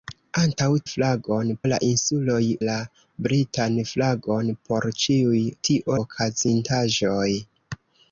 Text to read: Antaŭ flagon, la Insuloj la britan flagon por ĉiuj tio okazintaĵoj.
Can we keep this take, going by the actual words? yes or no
yes